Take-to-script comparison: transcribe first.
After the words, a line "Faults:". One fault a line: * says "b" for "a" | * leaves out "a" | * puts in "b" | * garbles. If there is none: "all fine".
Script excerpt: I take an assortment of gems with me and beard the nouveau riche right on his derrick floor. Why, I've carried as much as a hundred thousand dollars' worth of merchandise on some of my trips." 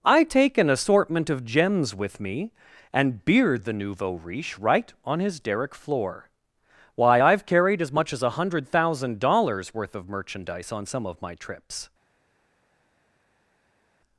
I take an assortment of gems with me and beard the nouveau riche right on his derrick floor. Why, I've carried as much as a hundred thousand dollars' worth of merchandise on some of my trips."
Faults:
all fine